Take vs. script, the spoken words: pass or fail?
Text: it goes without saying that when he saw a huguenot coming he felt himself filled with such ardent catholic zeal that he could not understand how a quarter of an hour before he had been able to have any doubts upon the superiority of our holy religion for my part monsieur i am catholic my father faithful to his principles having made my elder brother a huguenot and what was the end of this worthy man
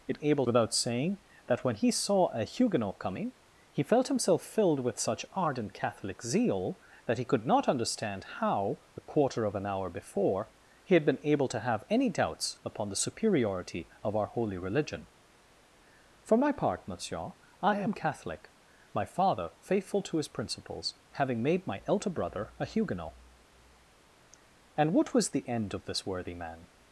fail